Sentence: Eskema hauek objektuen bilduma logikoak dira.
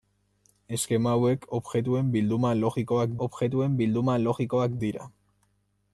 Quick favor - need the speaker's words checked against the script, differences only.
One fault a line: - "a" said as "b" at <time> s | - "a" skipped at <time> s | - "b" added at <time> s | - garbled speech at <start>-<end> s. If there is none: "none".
- "objektuen bilduma logikoak" added at 3.3 s